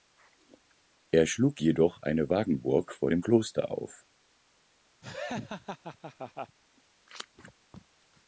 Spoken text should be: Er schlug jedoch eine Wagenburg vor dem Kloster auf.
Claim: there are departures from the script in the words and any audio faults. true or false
true